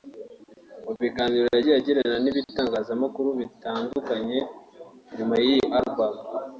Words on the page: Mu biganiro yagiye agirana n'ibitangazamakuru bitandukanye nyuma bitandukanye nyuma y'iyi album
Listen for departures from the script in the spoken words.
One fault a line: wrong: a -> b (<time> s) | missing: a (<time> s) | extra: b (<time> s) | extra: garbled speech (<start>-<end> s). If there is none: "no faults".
missing: bitandukanye nyuma (5.3 s)